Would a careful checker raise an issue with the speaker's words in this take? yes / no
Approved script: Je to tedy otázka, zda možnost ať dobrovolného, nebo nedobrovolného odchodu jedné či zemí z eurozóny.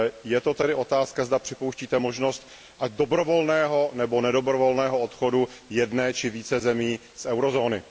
yes